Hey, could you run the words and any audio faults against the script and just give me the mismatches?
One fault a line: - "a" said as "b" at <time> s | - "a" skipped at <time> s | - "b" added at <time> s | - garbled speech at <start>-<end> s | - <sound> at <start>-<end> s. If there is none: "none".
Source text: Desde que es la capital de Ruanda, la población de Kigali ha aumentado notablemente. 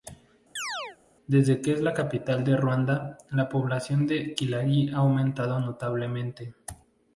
- chirp at 0.6-1.0 s